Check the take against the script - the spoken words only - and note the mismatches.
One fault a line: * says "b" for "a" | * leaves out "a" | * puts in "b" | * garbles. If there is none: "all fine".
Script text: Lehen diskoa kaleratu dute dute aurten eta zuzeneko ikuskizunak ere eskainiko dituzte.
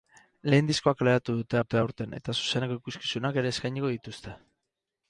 all fine